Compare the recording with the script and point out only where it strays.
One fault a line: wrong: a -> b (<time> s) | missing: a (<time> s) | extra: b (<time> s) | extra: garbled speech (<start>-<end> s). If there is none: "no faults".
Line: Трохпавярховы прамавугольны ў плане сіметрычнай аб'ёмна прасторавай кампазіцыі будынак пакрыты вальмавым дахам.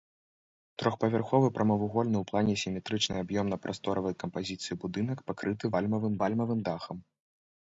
extra: вальмавым (6.2 s)